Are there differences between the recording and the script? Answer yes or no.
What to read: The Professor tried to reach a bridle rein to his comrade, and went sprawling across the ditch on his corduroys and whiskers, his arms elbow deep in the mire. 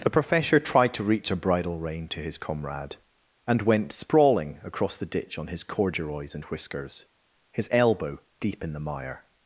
yes